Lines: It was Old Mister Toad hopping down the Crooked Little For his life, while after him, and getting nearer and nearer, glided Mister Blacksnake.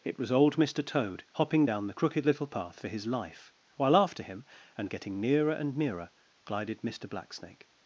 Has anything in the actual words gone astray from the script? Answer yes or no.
yes